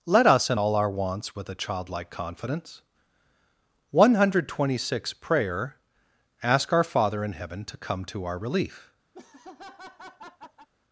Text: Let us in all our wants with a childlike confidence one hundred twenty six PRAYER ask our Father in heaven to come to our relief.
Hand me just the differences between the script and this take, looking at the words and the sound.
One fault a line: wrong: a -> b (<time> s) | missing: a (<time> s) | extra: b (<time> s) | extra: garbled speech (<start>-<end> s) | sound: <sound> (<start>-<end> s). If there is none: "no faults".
sound: laugh (9.1-10.7 s)